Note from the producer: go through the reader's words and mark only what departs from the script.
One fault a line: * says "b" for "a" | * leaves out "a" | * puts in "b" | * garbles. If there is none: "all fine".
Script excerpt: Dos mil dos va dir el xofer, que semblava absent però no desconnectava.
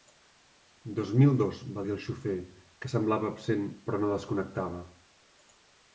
all fine